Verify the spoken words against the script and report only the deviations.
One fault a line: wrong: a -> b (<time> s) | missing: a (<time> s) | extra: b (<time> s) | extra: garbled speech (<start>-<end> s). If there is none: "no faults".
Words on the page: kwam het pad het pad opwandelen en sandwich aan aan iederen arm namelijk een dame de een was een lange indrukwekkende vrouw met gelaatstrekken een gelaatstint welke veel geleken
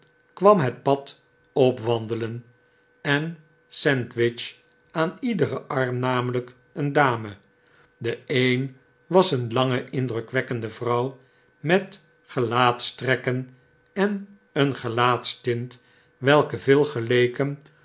missing: het pad (1.2 s)
missing: aan (5.2 s)
extra: en (13.9 s)